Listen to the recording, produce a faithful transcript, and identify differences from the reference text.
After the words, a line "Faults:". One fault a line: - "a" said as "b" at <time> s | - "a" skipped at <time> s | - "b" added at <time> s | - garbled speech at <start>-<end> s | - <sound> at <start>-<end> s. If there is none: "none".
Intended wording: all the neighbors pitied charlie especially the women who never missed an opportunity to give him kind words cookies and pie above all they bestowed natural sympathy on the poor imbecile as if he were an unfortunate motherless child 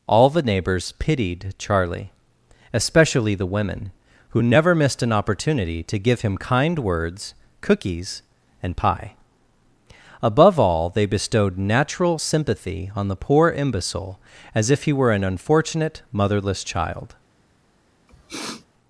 all the neighbors pitied charlie especially the women who never missed an opportunity to give him kind words cookies and pie above all they bestowed natural sympathy on the poor imbecile as if he were an unfortunate motherless child
Faults:
- sniff at 18.1-18.7 s